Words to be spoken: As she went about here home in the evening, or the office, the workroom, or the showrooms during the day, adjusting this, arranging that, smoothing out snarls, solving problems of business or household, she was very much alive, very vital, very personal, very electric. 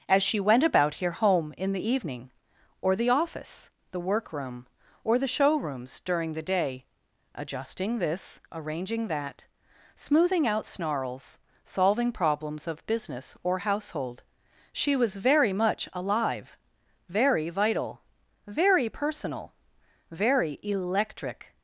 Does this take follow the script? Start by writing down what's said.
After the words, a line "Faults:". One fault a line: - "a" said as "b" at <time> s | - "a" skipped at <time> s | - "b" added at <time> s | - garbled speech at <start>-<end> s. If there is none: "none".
As she went about here home in the evening, or the office, the workroom, or the showrooms during the day, adjusting this, arranging that, smoothing out snarls, solving problems of business or household, she was very much alive, very vital, very personal, very electric.
Faults:
none